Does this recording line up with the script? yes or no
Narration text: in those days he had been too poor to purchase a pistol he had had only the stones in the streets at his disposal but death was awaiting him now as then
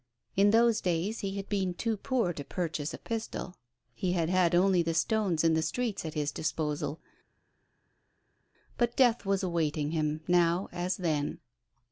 yes